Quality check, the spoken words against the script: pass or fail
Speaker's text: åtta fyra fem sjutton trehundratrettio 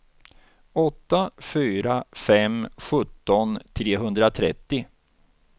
pass